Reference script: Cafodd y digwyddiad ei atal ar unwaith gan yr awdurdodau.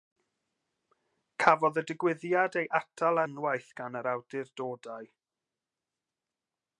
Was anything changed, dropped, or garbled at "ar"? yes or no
yes